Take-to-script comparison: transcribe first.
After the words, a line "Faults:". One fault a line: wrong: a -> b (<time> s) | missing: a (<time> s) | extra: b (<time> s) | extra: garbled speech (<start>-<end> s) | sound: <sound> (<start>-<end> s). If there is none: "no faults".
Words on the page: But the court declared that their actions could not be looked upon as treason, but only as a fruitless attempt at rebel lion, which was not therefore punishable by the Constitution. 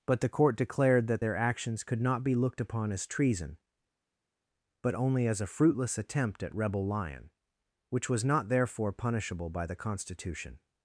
But the court declared that their actions could not be looked upon as treason, but only as a fruitless attempt at rebel lion, which was not therefore punishable by the Constitution.
Faults:
no faults